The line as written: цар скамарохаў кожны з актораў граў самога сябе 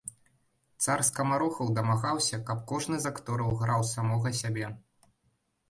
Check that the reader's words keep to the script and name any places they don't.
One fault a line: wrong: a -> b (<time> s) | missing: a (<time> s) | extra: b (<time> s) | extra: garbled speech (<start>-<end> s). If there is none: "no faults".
extra: дамагаўся каб (1.8 s)